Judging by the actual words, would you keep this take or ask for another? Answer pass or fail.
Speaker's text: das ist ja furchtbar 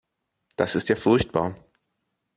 pass